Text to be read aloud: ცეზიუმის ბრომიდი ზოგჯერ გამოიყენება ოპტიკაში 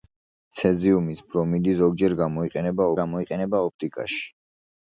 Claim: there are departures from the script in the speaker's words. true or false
true